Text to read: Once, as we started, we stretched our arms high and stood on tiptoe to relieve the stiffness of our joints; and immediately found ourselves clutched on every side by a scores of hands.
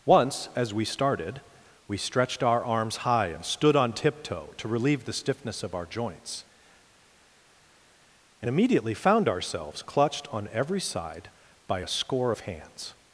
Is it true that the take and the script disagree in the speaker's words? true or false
true